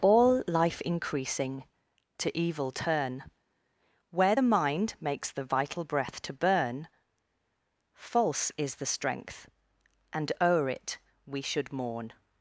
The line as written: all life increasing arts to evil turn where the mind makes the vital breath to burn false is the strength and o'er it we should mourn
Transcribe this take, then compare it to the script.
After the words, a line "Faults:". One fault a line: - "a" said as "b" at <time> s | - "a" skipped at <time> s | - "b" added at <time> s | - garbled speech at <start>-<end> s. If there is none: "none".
all life increasing to evil turn where the mind makes the vital breath to burn false is the strength and o'er it we should mourn
Faults:
- "arts" skipped at 1.6 s